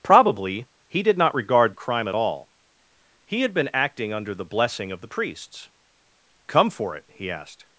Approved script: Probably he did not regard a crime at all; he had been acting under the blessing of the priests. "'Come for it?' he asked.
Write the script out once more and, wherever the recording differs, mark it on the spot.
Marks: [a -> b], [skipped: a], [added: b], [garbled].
Probably he did not regard a crime at all; he had been acting under the blessing of the priests. "'Come for it?' he asked.